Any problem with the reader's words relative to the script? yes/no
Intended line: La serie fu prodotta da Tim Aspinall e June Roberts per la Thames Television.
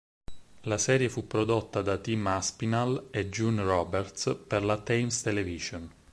no